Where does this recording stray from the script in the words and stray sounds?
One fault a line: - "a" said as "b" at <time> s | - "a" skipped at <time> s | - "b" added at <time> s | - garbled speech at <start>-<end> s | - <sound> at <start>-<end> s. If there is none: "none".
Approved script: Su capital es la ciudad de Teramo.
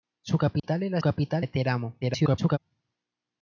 - dropout at 0.6-0.6 s
- "ciudad" said as "capital" at 1.0 s
- garbled speech at 2.0-2.6 s